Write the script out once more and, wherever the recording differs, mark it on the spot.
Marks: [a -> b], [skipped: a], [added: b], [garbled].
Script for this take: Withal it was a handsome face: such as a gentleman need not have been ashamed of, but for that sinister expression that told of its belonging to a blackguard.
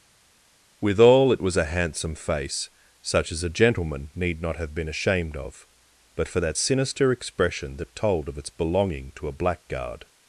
Withal it was a handsome face: such as a gentleman need not have been ashamed of, but for that sinister expression that told of its belonging to a blackguard.